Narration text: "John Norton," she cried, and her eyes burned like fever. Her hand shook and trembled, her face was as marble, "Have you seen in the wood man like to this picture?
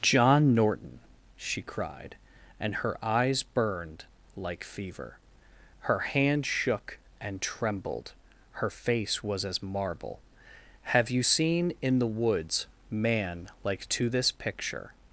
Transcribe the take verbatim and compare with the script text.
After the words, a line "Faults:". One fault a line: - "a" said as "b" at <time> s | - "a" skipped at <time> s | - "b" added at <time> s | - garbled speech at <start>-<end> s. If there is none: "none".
"John Norton," she cried, and her eyes burned like fever. Her hand shook and trembled, her face was as marble, "Have you seen in the woods man like to this picture?
Faults:
- "wood" said as "woods" at 12.1 s